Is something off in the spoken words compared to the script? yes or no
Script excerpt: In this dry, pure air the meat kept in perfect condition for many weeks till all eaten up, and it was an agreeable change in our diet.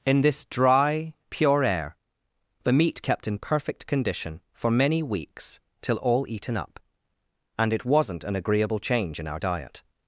yes